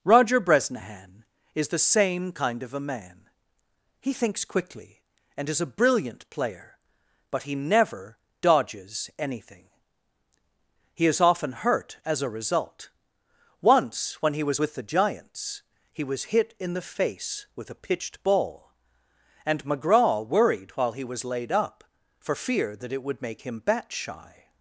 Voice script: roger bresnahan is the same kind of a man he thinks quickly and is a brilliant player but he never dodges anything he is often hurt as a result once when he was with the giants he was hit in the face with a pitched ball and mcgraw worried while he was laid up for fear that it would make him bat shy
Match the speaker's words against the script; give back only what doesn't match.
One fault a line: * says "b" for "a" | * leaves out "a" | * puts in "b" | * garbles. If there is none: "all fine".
all fine